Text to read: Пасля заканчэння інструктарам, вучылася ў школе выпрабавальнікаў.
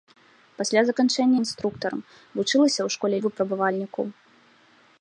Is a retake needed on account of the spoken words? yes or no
no